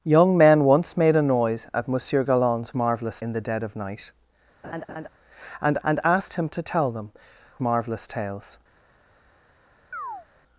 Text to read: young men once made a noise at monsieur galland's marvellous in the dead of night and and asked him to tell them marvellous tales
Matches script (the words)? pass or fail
pass